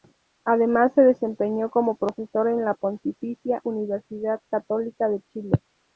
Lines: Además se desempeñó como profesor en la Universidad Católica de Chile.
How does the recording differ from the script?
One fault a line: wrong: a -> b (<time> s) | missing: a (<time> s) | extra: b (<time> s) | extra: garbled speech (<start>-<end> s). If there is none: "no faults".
extra: Pontificia (2.7 s)